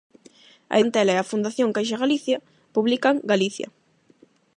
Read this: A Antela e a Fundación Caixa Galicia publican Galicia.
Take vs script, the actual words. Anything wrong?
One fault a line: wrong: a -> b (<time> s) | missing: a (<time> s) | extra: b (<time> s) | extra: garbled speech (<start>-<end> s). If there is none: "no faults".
no faults